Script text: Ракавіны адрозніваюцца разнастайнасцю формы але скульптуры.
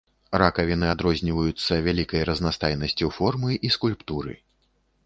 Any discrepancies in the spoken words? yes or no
yes